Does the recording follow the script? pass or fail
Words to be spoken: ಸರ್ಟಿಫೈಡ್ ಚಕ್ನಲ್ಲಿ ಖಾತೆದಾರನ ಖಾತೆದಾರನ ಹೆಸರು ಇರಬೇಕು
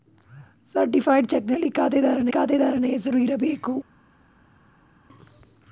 pass